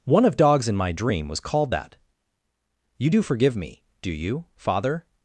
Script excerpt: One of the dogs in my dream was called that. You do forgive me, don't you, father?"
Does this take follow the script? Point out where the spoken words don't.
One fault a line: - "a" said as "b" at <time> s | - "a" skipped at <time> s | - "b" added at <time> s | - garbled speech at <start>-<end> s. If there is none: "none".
- "the" skipped at 0.3 s
- "don't" said as "do" at 4.0 s